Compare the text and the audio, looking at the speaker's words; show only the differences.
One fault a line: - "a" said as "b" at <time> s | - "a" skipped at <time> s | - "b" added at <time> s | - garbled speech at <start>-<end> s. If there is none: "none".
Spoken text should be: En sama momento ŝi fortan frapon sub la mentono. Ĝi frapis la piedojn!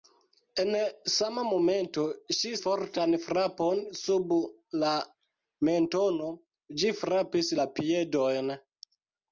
none